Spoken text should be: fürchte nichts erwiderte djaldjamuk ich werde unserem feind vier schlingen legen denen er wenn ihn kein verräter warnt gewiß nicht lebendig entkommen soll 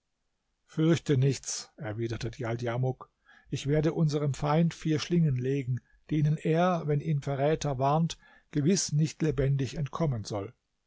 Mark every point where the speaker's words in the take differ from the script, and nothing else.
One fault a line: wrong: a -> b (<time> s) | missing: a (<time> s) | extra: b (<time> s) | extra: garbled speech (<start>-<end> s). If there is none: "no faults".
missing: kein (7.2 s)